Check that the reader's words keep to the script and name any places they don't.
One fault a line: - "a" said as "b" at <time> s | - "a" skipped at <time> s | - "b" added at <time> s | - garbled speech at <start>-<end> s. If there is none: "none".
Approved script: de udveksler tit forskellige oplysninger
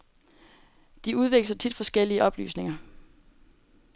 none